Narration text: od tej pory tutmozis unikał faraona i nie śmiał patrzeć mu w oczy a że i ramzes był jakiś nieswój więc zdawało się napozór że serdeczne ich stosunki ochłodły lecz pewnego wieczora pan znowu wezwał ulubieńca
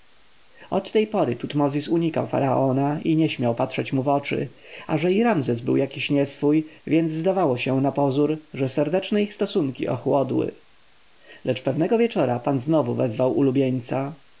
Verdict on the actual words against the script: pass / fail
pass